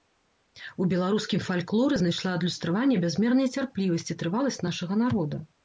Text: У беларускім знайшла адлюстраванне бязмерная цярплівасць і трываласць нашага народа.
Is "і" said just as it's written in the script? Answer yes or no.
yes